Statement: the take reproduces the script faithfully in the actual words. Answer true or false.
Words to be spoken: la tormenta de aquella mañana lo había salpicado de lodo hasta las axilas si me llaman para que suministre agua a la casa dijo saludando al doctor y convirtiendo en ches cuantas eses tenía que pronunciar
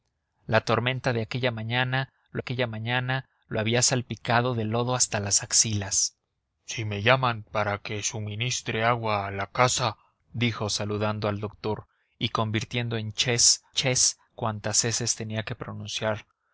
false